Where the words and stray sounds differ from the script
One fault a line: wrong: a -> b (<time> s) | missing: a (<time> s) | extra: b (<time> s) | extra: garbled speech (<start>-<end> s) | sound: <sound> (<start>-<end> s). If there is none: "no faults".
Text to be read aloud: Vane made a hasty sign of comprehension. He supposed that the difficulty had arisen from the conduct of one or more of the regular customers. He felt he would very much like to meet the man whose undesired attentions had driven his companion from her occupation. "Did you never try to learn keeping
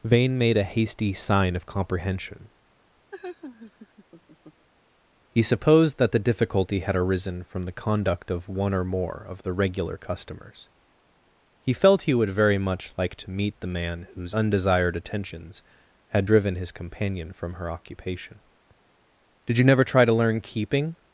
sound: laugh (3.1-4.7 s)